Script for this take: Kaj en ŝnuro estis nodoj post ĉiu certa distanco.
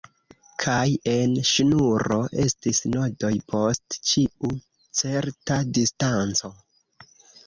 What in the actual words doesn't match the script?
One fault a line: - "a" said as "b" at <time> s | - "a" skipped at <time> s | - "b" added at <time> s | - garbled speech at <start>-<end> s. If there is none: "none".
none